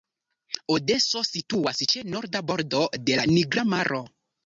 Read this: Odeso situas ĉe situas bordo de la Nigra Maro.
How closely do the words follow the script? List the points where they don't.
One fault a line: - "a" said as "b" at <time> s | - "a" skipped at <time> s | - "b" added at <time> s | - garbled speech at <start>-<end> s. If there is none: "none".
- "situas" said as "norda" at 2.1 s